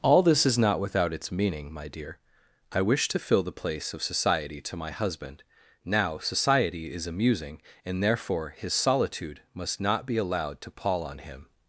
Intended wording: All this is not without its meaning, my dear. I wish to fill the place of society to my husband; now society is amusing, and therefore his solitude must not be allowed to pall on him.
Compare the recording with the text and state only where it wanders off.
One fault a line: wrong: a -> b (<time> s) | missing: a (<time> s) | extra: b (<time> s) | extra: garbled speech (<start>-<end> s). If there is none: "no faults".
no faults